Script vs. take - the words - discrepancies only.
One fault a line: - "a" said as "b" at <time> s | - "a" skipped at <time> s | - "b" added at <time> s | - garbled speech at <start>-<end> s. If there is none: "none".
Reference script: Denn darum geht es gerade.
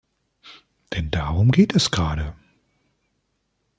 none